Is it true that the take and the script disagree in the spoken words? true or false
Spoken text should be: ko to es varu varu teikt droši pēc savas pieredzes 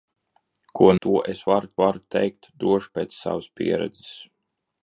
false